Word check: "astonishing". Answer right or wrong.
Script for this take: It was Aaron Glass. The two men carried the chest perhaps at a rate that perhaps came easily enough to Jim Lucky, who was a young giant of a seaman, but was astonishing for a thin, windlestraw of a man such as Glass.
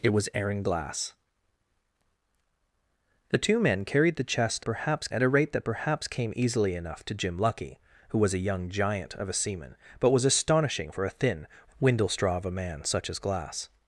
right